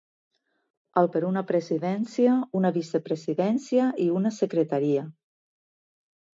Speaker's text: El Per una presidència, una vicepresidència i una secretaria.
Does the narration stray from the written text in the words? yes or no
no